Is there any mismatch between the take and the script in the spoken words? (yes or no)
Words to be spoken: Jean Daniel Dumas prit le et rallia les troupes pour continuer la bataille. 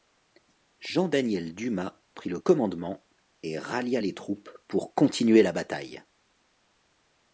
yes